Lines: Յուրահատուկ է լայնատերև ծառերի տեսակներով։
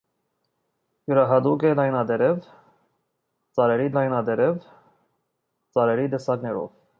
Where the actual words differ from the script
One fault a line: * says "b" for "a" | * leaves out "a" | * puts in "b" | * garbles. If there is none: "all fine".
* puts in "լայնատերև ծառերի"